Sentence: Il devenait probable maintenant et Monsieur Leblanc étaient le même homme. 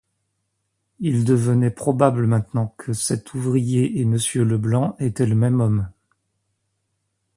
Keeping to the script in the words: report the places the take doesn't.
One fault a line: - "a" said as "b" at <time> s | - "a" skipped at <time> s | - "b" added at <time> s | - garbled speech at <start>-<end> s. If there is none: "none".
- "que cet ouvrier" added at 2.8 s